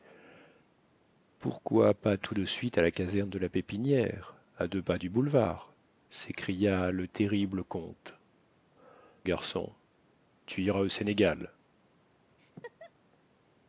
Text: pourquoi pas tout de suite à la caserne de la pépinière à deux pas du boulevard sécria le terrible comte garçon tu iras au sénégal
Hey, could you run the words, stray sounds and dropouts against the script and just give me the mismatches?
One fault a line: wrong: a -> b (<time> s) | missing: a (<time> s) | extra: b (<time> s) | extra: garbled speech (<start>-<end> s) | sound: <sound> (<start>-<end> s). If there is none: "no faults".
sound: laugh (12.4-12.9 s)